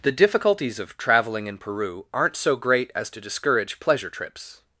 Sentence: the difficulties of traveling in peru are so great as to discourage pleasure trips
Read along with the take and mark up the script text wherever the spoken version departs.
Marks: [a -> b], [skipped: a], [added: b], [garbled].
the difficulties of traveling in peru [are -> aren't] so great as to discourage pleasure trips